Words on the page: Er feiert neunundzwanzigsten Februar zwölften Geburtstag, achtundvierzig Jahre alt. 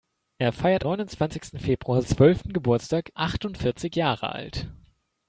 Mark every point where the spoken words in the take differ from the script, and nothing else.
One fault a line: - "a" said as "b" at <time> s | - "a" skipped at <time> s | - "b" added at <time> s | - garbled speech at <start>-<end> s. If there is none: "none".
none